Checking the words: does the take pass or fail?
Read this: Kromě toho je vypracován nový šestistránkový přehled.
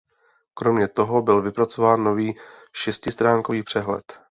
fail